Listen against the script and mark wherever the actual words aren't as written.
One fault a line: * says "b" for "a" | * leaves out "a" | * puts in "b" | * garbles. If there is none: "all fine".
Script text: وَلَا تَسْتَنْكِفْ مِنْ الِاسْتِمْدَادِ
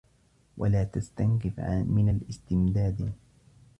all fine